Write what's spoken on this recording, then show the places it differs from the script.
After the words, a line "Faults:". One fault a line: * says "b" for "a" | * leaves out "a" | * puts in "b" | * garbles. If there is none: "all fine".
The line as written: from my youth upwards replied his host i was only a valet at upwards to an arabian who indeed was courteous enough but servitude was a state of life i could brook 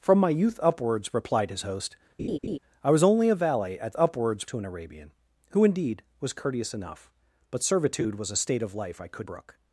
from my youth upwards replied his host i was only a valet at upwards to an arabian who indeed was courteous enough but servitude was a state of life i could brook
Faults:
all fine